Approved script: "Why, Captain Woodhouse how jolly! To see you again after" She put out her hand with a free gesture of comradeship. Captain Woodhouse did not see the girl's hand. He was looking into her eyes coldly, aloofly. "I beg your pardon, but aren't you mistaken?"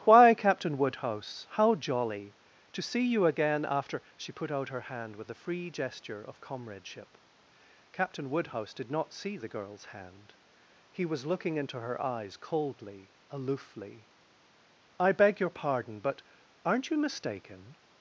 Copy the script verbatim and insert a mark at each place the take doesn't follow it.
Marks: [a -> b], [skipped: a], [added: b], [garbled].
"Why, Captain Woodhouse how jolly! To see you again after" She put out her hand with a free gesture of comradeship. Captain Woodhouse did not see the girl's hand. He was looking into her eyes coldly, aloofly. "I beg your pardon, but aren't you mistaken?"